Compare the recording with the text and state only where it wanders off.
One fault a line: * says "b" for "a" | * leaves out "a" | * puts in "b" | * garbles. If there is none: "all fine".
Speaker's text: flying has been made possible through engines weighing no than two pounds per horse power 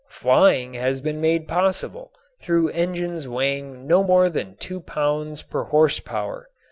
* puts in "more"